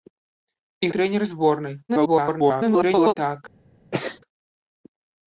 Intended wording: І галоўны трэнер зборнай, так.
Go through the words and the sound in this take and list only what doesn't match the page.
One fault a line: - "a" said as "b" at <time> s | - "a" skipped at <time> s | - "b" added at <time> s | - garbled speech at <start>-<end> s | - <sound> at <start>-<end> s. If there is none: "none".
- "галоўны" skipped at 0.9 s
- garbled speech at 1.9-3.1 s
- sneeze at 3.9-4.2 s